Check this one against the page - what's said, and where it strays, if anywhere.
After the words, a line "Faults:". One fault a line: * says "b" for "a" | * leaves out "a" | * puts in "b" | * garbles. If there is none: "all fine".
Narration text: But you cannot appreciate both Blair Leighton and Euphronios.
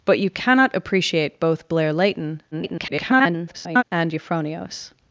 But you cannot appreciate both Blair Leighton [garbled] and Euphronios.
Faults:
* garbles